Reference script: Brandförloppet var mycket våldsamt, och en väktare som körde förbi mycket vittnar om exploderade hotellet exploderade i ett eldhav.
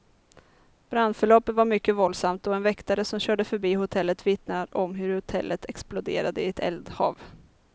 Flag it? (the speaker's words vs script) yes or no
yes